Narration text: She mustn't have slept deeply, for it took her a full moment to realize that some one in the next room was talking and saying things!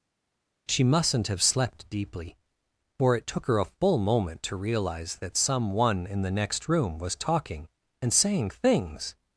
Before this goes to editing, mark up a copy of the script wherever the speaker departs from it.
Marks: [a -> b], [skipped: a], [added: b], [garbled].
She mustn't have slept deeply, for it took her a full moment to realize that some one in the next room was talking and saying things!